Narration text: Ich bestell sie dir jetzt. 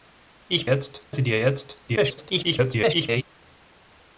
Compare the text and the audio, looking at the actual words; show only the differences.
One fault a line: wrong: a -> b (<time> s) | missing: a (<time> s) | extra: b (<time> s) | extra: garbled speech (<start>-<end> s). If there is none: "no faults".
wrong: bestell -> jetzt (0.7 s)
extra: garbled speech (1.9-3.2 s)